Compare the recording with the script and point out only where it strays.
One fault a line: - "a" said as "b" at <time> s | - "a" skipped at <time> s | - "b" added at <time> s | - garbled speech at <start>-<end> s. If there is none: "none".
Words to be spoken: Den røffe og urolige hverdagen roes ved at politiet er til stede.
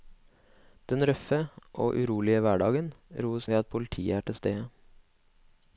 none